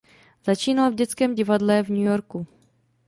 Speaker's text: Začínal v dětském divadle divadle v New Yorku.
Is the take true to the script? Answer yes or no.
no